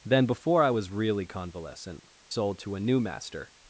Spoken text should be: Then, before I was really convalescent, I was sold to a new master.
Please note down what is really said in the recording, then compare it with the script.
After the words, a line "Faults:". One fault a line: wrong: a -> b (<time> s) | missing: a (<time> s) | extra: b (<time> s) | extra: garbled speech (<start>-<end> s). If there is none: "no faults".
Then, before I was really convalescent, sold to a new master.
Faults:
missing: I was (2.0 s)